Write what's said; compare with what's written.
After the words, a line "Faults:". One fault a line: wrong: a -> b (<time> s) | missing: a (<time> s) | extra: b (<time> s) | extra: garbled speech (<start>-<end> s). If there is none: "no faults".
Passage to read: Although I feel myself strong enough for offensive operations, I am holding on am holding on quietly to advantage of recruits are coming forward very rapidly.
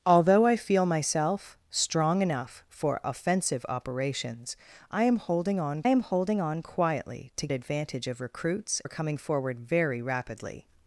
Although I feel myself strong enough for offensive operations, I am holding on am holding on quietly to advantage of recruits are coming forward very rapidly.
Faults:
no faults